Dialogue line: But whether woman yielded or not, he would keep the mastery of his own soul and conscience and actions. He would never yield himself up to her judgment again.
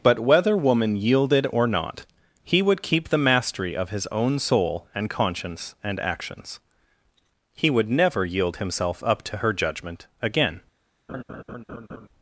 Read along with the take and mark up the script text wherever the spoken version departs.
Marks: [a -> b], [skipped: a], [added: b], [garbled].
But whether woman yielded or not, he would keep the mastery of his own soul and conscience and actions. He would never yield himself up to her judgment again.